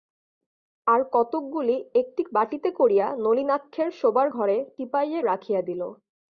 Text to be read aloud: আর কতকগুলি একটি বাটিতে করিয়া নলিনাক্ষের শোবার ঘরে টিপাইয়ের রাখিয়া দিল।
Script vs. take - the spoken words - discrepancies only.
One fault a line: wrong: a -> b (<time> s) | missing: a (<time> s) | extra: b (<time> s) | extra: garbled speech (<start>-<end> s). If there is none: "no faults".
no faults